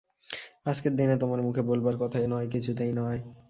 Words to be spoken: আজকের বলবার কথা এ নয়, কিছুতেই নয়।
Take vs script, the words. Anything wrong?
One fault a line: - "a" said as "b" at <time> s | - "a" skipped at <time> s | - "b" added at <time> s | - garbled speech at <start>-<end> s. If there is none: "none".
- "দিনে তোমার মুখে" added at 0.9 s